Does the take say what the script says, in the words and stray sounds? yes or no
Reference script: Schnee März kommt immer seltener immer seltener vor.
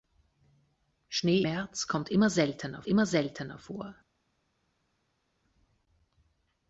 yes